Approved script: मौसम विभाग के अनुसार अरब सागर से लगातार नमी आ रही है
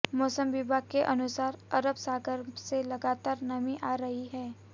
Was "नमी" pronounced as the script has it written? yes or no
yes